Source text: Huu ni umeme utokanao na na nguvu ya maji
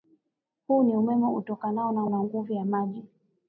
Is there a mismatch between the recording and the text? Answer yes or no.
no